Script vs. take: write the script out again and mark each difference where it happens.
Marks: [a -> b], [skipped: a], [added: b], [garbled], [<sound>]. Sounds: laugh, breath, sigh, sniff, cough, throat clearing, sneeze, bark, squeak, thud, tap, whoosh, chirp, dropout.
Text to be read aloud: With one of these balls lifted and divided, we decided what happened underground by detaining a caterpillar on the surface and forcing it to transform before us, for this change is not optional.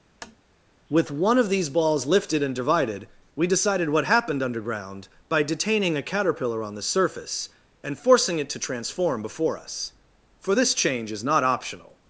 [tap] With one of these balls lifted and divided, we decided what happened underground by detaining a caterpillar on the surface and forcing it to transform before us, for this change is not optional.